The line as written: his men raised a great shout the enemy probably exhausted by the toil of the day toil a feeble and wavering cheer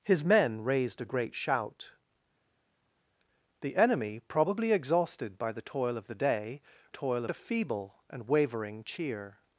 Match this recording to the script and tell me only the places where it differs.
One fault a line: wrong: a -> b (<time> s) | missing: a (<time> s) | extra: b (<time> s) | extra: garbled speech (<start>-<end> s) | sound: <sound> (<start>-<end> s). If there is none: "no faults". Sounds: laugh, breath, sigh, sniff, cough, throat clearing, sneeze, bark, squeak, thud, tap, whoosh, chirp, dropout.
no faults